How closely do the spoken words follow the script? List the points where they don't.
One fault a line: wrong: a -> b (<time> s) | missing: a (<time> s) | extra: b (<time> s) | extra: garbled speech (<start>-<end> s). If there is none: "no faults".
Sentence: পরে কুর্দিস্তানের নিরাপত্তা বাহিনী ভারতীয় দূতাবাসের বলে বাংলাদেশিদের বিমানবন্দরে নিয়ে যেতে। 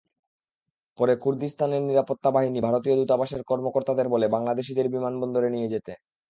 extra: কর্মকর্তাদের (3.4 s)